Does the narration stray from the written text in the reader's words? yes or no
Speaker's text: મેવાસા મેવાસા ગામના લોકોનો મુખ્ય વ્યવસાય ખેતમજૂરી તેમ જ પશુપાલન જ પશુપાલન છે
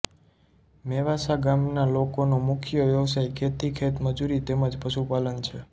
yes